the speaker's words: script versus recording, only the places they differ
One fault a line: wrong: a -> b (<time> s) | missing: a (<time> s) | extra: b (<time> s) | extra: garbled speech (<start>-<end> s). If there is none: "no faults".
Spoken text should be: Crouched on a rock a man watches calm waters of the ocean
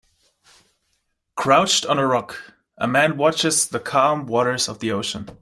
extra: the (3.7 s)